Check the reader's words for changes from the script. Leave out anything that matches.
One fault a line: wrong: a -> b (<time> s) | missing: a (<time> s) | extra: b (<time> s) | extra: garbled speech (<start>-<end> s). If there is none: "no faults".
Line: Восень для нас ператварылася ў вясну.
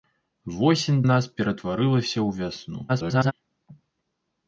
missing: для (1.0 s)
extra: garbled speech (2.9-3.3 s)